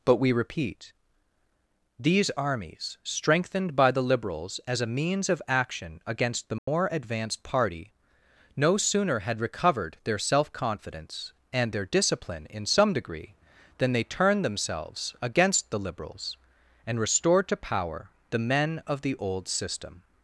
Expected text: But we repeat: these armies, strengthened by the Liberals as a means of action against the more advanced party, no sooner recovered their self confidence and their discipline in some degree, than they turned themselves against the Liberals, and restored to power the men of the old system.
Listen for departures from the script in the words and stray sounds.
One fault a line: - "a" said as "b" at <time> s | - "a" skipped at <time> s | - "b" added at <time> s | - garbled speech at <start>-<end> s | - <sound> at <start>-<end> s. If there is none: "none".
- dropout at 6.6-6.7 s
- "had" added at 9.2 s